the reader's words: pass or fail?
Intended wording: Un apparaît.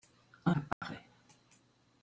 pass